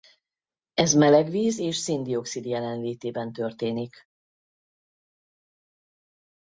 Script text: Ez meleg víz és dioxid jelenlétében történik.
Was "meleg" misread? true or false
false